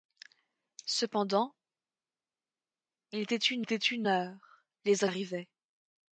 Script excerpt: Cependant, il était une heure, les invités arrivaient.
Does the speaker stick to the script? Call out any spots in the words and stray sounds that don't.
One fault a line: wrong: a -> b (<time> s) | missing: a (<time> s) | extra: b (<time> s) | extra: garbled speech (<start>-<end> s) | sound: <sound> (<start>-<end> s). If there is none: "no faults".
extra: était une (3.6 s)
missing: invités (5.0 s)